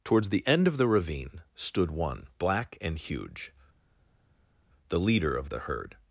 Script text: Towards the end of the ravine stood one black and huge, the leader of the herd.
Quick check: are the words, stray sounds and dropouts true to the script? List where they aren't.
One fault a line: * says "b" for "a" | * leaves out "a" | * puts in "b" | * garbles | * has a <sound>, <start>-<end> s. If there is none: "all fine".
all fine